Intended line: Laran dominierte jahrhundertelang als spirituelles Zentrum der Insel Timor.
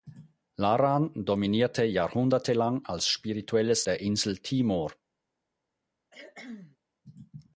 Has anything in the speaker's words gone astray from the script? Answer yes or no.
yes